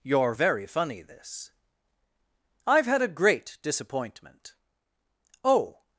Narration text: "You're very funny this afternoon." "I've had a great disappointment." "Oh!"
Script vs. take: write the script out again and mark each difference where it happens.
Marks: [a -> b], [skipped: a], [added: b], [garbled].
"You're very funny this [skipped: afternoon."] "I've had a great disappointment." "Oh!"